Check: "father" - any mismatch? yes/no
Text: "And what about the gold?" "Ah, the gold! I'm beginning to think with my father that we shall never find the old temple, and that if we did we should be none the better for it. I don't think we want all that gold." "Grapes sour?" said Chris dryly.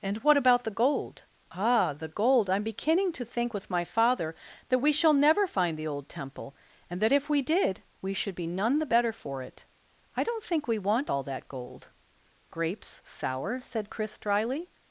no